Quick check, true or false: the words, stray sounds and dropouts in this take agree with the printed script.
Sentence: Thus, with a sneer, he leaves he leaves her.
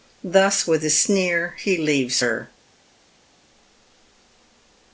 false